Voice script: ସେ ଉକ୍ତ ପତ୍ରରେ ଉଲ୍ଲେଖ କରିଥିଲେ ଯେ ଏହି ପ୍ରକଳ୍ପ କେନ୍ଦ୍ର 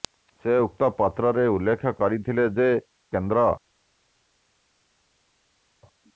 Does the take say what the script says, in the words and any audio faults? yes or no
no